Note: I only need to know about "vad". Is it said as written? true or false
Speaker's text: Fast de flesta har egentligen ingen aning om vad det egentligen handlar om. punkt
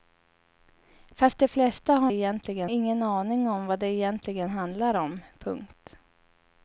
true